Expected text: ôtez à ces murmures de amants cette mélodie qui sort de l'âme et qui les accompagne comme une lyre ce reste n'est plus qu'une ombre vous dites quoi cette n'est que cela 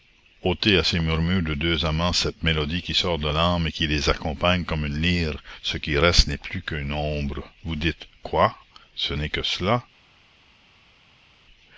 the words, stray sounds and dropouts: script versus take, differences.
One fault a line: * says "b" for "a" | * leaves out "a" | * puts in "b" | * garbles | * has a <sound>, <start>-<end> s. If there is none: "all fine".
* puts in "deux"
* puts in "qui"
* says "ce" for "cette"